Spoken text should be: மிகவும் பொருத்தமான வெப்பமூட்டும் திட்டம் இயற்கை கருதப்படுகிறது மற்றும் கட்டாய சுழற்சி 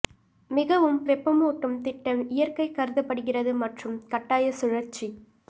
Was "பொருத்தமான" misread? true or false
true